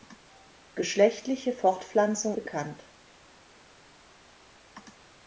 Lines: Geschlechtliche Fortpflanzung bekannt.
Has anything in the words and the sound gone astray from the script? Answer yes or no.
no